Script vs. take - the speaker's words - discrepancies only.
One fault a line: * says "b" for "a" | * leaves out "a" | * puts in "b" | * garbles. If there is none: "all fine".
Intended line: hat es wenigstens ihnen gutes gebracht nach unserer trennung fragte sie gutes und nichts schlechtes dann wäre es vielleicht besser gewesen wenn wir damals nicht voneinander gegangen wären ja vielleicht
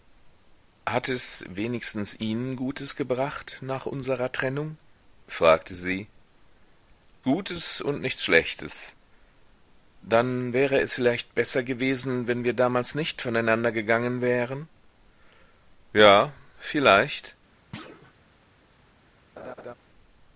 all fine